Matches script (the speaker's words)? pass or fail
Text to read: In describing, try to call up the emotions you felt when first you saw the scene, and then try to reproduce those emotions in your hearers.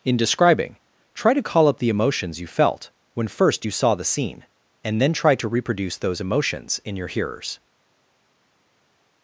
pass